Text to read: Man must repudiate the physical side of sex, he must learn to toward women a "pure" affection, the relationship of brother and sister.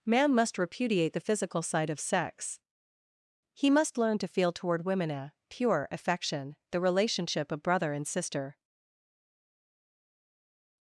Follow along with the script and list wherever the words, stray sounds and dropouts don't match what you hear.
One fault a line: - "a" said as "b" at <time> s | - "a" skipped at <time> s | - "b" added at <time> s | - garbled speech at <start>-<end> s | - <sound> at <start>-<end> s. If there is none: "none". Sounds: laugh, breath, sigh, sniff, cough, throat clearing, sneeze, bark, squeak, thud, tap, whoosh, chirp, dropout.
- "feel" added at 4.3 s